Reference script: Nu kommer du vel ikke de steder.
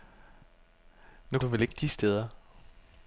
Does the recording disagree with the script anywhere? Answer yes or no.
yes